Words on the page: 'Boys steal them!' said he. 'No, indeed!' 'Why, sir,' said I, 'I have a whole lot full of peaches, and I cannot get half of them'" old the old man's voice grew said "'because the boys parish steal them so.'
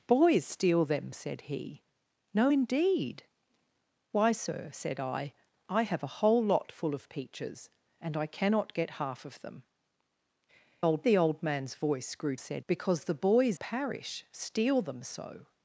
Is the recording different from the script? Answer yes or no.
no